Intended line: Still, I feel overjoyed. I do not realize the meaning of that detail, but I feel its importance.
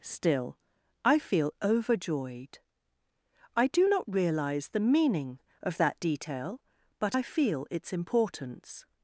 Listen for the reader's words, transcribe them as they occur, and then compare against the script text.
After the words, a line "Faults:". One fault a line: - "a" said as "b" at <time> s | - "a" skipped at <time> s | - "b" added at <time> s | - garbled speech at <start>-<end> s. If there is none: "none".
Still, I feel overjoyed. I do not realize the meaning of that detail, but I feel its importance.
Faults:
none